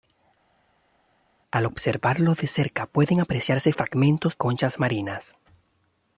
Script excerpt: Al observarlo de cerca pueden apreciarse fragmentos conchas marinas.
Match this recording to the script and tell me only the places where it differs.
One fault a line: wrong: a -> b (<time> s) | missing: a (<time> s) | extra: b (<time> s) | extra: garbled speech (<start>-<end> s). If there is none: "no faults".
no faults